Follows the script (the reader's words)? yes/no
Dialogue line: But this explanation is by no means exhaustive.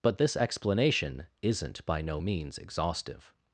no